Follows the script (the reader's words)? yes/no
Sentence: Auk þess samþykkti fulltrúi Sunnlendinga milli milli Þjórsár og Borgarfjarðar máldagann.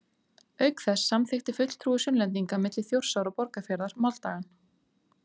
no